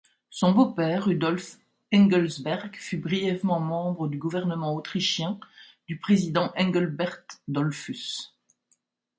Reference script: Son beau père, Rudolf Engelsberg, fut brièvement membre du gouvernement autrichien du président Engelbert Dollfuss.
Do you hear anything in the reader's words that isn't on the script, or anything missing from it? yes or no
no